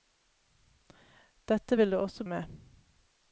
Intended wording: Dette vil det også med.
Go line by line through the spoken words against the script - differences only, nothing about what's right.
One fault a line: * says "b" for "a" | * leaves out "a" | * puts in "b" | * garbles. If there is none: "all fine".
all fine